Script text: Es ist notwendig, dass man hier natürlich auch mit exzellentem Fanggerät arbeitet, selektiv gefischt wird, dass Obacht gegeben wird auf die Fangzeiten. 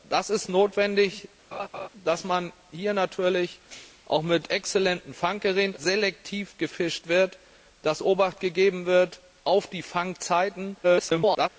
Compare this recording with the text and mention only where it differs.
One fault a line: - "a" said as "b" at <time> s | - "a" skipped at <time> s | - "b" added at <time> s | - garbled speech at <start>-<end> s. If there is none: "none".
- "arbeitet" skipped at 5.8 s
- garbled speech at 10.8-11.5 s